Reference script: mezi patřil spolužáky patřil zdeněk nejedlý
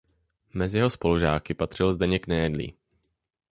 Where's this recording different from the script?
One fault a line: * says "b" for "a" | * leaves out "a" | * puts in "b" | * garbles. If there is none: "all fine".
* says "jeho" for "patřil"